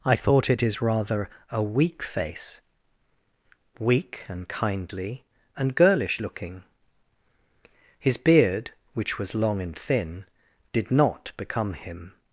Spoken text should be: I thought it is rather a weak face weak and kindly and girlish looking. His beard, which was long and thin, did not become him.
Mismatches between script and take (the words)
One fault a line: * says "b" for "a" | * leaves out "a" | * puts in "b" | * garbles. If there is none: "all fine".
all fine